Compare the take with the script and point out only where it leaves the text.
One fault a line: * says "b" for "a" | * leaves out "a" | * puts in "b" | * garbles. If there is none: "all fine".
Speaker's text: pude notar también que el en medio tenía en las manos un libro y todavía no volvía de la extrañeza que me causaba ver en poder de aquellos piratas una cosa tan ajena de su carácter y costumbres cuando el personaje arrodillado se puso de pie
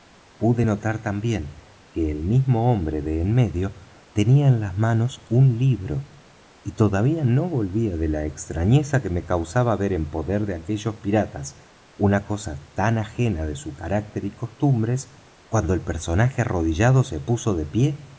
* puts in "mismo hombre de"